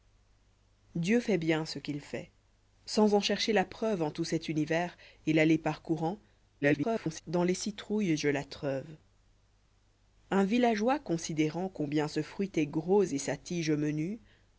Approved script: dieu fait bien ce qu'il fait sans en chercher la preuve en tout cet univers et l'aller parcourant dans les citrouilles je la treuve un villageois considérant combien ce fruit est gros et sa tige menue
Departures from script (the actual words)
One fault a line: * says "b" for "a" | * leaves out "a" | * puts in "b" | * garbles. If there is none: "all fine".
* garbles